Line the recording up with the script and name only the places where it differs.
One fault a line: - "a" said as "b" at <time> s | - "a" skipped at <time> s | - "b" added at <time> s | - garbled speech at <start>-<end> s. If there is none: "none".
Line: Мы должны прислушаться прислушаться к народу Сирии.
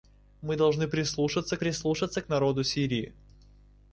none